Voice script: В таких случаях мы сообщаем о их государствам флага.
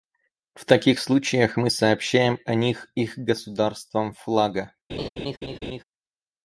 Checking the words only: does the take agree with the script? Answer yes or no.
no